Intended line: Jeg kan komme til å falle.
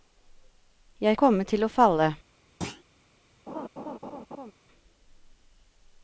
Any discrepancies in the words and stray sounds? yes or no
yes